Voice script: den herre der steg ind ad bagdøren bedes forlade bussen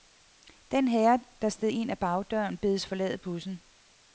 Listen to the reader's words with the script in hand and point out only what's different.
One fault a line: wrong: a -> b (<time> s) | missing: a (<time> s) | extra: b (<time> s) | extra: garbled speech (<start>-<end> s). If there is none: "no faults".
no faults